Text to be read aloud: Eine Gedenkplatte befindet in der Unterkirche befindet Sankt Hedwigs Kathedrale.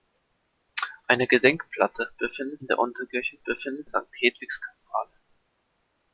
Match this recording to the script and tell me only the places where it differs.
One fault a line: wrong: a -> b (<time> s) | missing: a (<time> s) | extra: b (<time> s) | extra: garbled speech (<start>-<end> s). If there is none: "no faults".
no faults